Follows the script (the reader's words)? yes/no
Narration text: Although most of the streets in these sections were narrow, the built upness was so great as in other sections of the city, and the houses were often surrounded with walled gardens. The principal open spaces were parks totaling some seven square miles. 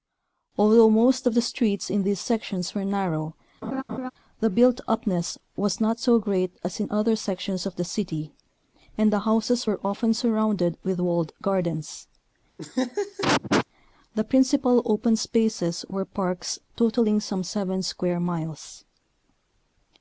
no